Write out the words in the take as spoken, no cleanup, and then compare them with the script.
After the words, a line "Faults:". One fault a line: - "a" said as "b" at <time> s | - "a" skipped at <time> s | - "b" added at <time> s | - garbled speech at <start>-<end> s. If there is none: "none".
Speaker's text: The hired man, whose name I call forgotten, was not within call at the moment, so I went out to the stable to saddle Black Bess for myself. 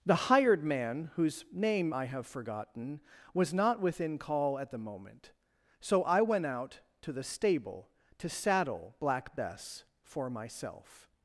The hired man, whose name I have forgotten, was not within call at the moment, so I went out to the stable to saddle Black Bess for myself.
Faults:
- "call" said as "have" at 2.0 s